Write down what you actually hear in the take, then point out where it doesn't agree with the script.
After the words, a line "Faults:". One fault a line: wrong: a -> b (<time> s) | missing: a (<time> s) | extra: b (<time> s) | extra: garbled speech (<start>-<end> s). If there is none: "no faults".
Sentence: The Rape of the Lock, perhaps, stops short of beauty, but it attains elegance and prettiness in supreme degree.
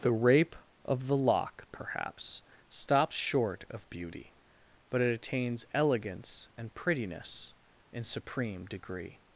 The Rape of the Lock, perhaps, stops short of beauty, but it attains elegance and prettiness in supreme degree.
Faults:
no faults